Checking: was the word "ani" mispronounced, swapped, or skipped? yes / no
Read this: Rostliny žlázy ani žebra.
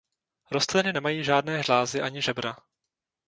no